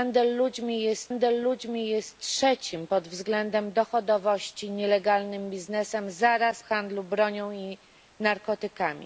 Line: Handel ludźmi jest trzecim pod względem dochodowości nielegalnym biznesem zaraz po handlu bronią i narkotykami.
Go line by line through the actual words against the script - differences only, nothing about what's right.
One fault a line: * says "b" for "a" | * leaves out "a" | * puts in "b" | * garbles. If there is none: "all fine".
* puts in "handel ludźmi jest"
* leaves out "po"